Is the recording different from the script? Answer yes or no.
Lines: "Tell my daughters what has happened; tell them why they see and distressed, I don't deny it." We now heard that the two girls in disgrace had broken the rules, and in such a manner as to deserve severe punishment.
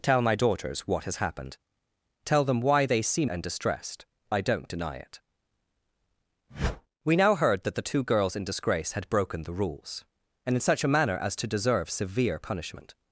no